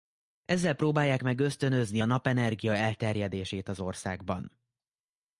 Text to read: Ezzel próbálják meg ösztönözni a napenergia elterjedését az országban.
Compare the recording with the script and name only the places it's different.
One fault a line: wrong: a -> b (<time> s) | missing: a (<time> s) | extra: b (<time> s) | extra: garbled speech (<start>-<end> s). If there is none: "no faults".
no faults